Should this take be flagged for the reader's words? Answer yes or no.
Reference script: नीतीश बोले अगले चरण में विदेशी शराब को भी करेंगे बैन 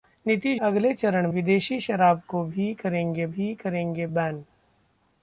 yes